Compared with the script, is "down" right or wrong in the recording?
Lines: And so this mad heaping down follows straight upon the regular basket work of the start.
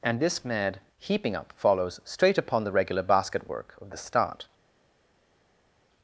wrong